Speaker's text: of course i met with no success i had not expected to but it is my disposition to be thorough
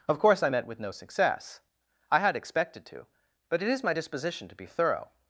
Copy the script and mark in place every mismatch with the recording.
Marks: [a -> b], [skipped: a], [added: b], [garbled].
of course i met with no success i had [skipped: not] expected to but it is my disposition to be thorough